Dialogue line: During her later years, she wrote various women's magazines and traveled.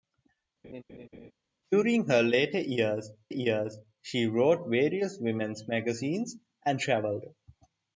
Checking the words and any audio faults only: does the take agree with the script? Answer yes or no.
no